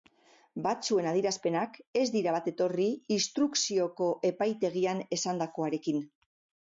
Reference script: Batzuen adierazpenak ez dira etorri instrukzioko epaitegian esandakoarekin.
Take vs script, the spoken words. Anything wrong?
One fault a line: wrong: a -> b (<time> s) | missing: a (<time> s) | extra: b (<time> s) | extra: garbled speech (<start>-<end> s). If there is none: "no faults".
extra: bat (2.4 s)